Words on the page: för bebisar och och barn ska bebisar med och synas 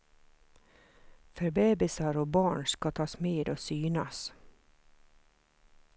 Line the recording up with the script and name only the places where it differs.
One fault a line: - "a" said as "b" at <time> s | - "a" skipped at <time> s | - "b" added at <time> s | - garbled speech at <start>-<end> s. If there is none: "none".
- "och" skipped at 2.3 s
- "bebisar" said as "tas" at 2.9 s